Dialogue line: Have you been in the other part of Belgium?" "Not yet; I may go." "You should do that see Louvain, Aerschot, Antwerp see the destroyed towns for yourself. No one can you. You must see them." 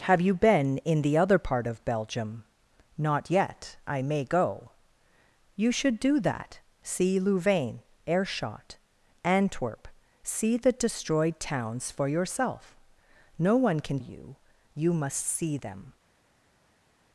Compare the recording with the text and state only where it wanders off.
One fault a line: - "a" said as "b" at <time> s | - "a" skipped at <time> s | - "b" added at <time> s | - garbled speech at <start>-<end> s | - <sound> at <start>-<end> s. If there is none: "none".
none